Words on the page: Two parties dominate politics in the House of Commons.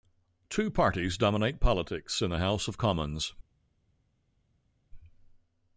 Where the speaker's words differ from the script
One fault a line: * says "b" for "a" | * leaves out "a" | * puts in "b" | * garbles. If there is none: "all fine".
all fine